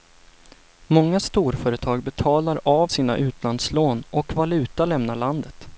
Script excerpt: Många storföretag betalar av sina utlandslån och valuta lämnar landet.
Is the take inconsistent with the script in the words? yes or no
no